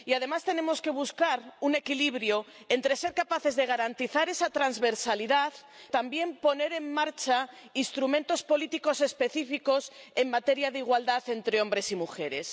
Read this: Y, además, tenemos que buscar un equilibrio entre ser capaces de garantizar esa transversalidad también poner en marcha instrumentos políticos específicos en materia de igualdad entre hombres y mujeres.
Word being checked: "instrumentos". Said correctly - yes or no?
yes